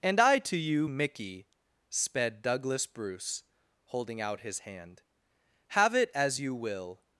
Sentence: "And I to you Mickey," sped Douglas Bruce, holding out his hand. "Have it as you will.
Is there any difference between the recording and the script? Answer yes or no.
no